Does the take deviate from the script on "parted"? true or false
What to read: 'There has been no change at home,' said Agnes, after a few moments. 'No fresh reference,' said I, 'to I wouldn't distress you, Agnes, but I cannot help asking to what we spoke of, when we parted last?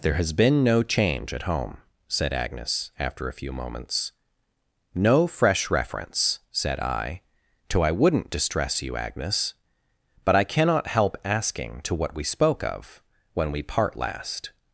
true